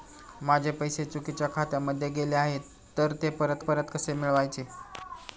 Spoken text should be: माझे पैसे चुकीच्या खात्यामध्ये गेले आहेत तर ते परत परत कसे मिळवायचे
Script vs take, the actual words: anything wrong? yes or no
no